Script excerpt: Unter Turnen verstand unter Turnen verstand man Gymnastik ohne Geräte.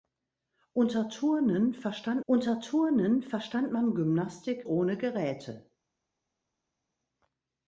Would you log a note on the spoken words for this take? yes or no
no